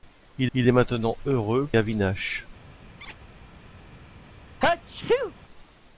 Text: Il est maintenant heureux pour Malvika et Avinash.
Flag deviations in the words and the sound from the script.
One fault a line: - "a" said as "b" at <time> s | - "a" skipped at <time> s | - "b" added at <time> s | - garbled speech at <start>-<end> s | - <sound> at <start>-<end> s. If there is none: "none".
- "il" added at 0.5 s
- "pour Malvika et" skipped at 1.7 s
- squeak at 3.0-3.2 s
- sneeze at 4.6-5.3 s